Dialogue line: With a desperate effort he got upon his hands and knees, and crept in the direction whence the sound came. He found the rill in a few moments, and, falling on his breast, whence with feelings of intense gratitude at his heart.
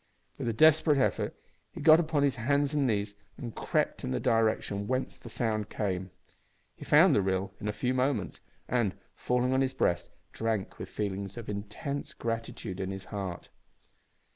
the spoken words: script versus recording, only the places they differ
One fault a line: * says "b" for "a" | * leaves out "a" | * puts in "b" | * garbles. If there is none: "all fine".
* says "drank" for "whence"
* says "in" for "at"